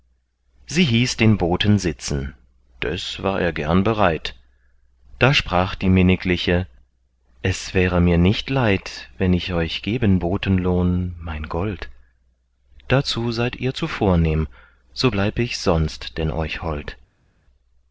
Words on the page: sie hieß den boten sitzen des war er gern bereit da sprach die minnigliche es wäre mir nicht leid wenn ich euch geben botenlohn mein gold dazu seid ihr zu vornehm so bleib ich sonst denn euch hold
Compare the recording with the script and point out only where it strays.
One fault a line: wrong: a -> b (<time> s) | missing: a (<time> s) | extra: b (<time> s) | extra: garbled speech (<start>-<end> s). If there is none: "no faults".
no faults